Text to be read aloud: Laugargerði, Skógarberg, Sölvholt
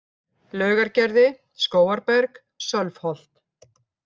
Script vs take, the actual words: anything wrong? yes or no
no